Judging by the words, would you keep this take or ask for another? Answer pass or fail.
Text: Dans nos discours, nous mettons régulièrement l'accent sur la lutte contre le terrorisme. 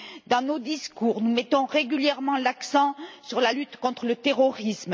pass